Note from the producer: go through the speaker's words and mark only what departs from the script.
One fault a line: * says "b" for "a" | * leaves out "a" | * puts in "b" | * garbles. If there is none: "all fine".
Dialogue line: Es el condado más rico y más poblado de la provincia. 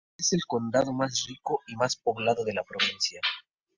all fine